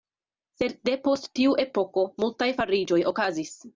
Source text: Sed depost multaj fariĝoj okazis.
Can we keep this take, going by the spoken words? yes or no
no